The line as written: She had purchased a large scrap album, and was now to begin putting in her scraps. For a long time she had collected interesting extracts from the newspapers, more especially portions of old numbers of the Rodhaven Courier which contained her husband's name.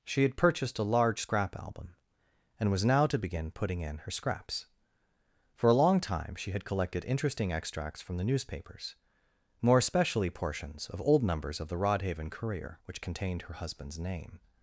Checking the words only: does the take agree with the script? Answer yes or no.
yes